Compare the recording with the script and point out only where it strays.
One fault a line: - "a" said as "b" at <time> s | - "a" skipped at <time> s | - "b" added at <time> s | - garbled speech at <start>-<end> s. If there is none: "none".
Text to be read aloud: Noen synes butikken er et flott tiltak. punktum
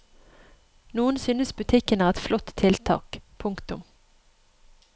none